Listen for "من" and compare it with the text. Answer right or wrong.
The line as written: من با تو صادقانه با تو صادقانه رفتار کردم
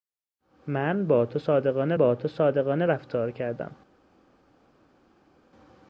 right